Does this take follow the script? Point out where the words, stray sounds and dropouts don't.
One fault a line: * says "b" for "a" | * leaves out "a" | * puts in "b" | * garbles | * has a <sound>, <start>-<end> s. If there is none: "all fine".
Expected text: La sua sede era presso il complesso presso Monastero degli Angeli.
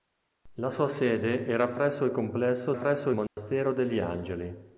* has a dropout, 3.3-3.4 s